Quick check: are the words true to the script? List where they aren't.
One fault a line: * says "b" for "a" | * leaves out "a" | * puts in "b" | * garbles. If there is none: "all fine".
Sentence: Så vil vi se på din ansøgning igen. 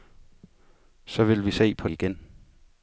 * leaves out "din ansøgning"